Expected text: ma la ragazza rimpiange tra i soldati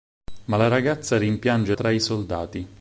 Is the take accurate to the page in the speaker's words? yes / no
yes